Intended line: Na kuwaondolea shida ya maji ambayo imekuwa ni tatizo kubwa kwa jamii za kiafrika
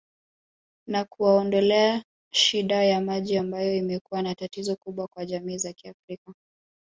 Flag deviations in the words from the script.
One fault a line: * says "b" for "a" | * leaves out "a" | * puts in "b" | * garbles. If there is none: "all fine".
all fine